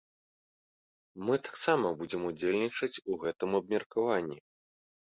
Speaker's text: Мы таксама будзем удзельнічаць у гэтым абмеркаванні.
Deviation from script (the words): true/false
false